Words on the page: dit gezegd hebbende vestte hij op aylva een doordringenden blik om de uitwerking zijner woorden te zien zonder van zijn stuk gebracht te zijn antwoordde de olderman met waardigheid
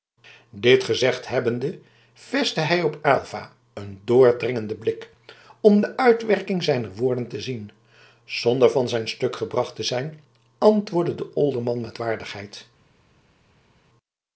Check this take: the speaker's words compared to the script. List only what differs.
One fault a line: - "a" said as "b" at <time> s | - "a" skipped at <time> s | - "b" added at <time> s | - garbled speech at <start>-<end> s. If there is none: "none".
none